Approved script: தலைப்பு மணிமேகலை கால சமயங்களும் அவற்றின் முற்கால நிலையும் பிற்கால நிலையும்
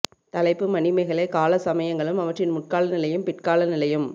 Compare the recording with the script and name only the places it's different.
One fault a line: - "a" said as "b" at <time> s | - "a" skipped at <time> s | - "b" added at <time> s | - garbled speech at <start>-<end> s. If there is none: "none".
none